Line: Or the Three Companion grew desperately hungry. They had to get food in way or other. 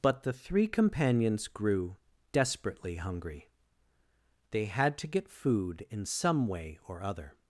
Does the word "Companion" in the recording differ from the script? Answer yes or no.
yes